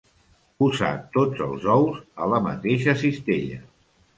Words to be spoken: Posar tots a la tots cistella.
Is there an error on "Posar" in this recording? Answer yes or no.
no